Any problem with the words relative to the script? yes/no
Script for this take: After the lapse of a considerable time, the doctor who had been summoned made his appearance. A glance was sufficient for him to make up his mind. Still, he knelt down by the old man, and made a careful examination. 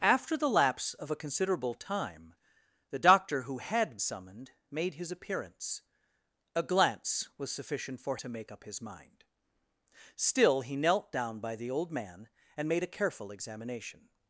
yes